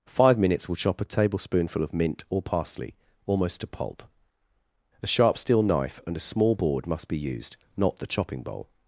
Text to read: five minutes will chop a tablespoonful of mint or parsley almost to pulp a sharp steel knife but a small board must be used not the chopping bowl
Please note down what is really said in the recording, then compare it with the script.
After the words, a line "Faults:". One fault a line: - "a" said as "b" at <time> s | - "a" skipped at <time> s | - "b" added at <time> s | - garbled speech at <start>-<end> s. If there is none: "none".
five minutes will chop a tablespoonful of mint or parsley almost to pulp a sharp steel knife and a small board must be used not the chopping bowl
Faults:
- "but" said as "and" at 6.0 s